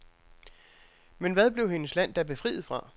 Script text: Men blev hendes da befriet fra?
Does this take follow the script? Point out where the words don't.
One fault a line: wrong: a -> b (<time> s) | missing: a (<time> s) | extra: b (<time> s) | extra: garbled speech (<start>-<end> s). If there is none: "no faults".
extra: hvad (1.3 s)
extra: land (1.9 s)